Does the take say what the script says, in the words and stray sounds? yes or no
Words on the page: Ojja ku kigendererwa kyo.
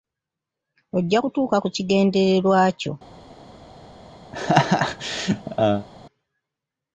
no